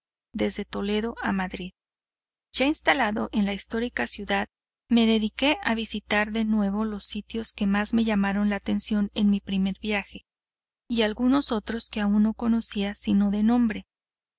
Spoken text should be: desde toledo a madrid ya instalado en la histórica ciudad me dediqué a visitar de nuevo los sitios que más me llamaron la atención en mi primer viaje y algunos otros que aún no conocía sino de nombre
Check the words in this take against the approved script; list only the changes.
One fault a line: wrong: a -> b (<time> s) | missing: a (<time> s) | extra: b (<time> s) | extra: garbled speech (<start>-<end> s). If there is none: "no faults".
no faults